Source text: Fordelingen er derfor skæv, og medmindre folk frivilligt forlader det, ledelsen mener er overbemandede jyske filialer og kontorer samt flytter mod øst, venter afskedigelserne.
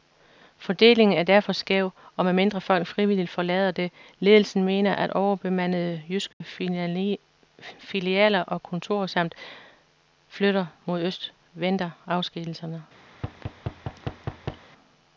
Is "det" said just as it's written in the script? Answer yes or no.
yes